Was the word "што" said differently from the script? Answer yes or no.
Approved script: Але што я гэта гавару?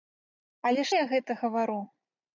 yes